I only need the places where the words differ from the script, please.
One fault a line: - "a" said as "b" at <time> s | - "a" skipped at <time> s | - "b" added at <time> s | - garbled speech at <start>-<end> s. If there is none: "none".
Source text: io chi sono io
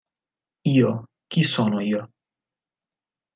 none